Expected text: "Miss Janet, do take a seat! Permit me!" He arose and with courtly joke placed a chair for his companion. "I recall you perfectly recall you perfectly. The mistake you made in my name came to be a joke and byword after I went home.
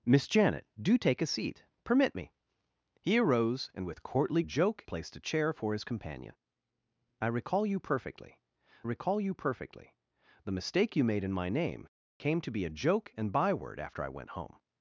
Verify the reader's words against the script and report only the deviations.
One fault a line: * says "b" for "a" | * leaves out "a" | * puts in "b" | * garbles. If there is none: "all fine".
all fine